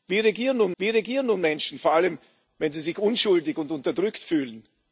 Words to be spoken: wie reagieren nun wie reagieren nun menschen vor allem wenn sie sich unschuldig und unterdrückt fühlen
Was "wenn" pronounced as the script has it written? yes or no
yes